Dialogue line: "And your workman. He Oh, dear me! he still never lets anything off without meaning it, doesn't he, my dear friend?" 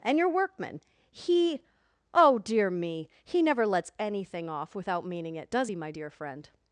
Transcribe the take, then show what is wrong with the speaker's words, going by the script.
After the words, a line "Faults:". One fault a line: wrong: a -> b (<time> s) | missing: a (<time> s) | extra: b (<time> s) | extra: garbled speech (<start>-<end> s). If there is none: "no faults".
"And your workman. He Oh, dear me! he never lets anything off without meaning it, does he, my dear friend?"
Faults:
missing: still (3.4 s)
wrong: doesn't -> does (5.5 s)